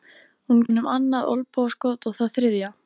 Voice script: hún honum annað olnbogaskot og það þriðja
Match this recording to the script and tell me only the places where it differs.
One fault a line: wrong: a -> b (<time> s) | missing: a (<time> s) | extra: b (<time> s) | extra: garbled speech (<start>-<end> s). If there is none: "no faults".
no faults